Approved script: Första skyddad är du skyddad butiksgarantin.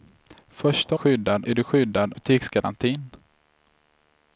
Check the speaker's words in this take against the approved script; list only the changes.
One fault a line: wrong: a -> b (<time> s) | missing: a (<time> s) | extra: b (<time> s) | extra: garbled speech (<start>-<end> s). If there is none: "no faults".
no faults